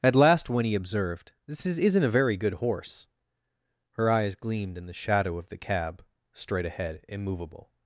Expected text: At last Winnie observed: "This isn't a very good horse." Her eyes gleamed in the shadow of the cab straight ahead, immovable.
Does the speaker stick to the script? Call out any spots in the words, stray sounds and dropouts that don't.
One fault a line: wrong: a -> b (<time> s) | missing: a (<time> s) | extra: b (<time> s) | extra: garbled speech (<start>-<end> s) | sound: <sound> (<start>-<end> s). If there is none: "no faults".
extra: is (1.6 s)